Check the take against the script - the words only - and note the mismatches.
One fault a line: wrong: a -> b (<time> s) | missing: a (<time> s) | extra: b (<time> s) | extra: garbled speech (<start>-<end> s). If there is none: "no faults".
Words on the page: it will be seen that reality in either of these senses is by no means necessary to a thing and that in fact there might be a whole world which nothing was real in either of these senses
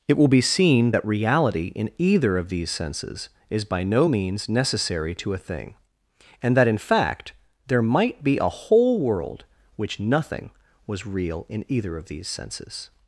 no faults